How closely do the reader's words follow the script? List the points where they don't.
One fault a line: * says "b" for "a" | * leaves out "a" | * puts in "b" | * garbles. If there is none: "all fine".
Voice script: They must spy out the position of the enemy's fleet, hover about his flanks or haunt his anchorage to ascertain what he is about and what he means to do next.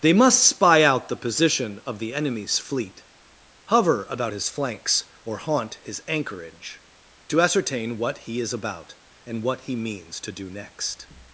all fine